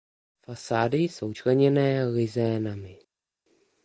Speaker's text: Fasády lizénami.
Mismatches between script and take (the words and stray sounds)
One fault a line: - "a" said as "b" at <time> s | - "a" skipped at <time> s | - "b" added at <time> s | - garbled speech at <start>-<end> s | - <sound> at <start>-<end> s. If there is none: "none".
- "jsou členěné" added at 1.0 s